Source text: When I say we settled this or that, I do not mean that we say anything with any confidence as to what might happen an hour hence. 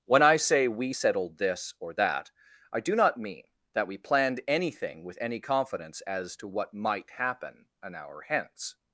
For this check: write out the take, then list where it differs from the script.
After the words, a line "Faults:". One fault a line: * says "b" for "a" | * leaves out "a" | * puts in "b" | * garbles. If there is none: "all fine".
When I say we settled this or that, I do not mean that we planned anything with any confidence as to what might happen an hour hence.
Faults:
* says "planned" for "say"